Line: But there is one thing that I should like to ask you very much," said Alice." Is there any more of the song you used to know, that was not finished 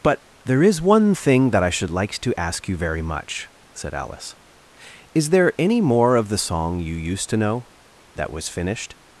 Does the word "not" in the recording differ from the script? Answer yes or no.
yes